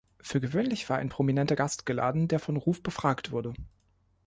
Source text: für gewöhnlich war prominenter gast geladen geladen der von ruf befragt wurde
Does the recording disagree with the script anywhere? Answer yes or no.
yes